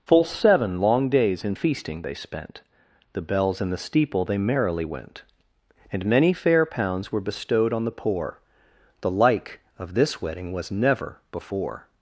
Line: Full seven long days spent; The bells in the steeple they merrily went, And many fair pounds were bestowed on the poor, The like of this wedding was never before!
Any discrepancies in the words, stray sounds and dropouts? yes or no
yes